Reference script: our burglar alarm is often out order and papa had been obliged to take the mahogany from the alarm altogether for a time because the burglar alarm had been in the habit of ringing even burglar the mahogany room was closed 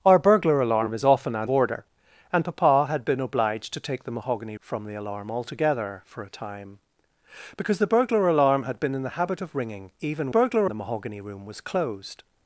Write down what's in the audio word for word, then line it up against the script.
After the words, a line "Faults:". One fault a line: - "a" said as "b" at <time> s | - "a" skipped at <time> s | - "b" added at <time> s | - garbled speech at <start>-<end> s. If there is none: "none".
our burglar alarm is often out order and papa had been obliged to take the mahogany from the alarm altogether for a time because the burglar alarm had been in the habit of ringing even burglar the mahogany room was closed
Faults:
none